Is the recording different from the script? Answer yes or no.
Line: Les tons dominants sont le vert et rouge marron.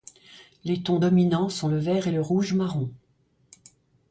yes